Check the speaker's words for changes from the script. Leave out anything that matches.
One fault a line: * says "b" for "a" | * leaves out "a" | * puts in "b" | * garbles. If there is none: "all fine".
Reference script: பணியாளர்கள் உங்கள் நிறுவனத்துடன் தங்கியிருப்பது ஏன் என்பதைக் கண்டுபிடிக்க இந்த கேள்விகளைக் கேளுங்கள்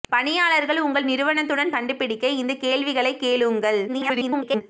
* leaves out "தங்கியிருப்பது ஏன் என்பதைக்"
* garbles